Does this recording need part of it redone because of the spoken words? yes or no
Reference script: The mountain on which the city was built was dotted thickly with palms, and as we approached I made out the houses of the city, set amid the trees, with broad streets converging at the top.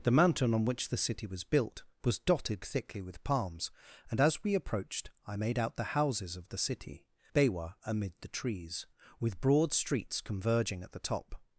yes